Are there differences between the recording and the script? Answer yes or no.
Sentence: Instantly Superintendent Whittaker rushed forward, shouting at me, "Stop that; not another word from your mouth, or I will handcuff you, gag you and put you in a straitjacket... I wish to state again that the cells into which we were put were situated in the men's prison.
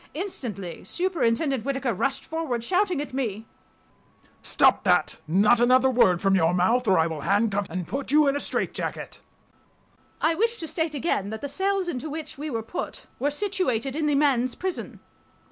yes